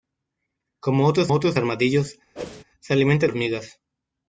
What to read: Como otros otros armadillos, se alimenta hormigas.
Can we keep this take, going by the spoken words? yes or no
yes